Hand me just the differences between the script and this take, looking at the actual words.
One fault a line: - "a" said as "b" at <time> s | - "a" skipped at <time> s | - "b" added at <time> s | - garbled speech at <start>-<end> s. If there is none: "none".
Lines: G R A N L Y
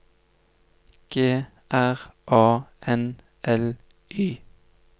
none